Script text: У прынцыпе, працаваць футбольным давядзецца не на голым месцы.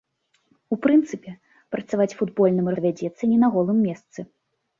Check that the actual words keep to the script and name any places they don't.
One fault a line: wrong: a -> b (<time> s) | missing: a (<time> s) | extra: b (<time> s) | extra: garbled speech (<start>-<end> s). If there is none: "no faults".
no faults